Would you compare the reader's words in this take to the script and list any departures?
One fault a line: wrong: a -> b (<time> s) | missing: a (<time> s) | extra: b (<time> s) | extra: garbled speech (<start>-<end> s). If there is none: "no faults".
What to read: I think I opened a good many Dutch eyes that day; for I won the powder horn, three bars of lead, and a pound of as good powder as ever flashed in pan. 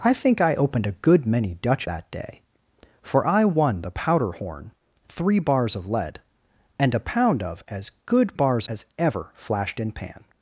missing: eyes (1.9 s)
wrong: powder -> bars (8.3 s)